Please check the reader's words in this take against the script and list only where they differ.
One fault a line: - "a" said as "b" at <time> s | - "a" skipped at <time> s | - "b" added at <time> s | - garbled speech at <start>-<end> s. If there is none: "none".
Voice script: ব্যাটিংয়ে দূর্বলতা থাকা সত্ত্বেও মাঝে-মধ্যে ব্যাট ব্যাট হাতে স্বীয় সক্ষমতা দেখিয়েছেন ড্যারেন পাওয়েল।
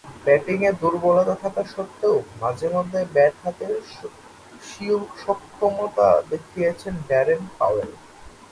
- "ব্যাট" skipped at 3.3 s